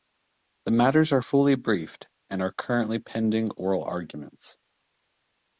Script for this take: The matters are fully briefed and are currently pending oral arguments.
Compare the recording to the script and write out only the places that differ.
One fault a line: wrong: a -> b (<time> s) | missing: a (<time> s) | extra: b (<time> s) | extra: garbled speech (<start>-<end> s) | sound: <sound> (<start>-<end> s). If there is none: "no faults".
no faults